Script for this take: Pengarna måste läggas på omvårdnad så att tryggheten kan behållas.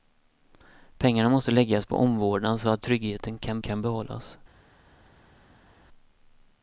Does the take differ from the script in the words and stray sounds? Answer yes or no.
yes